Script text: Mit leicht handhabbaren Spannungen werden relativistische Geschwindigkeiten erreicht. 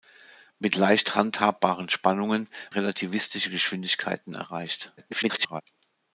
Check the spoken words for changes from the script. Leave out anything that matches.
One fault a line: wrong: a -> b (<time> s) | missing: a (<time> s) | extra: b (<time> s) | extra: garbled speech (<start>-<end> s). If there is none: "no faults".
missing: werden (2.5 s)
extra: garbled speech (5.0-5.6 s)